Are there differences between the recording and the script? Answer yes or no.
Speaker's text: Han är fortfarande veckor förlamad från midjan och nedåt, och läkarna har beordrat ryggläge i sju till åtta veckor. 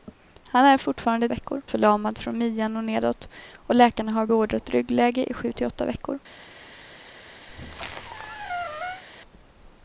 no